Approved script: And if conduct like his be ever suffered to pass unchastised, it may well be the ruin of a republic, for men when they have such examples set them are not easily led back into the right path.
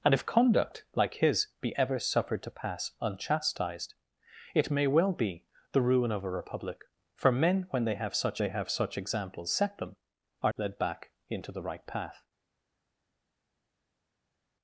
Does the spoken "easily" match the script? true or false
false